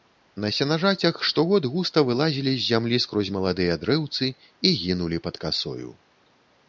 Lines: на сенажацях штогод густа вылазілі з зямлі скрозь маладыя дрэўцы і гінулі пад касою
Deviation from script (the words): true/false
false